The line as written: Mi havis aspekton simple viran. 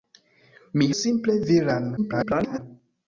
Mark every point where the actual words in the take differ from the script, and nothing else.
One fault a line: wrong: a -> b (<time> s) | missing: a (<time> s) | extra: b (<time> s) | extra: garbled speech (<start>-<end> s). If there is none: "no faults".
missing: havis aspekton (0.9 s)
extra: garbled speech (2.0-2.6 s)